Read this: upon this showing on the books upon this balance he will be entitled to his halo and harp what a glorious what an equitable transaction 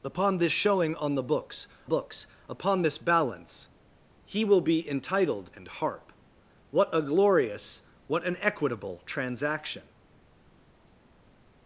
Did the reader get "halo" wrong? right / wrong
wrong